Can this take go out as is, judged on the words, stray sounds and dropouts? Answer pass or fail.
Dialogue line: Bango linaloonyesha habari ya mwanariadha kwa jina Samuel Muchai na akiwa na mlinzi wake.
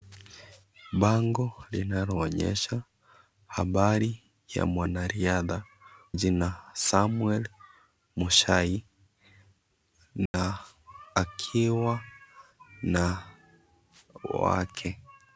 fail